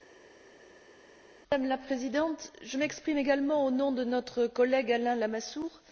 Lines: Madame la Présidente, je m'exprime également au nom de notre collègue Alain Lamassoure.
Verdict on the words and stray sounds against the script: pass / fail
pass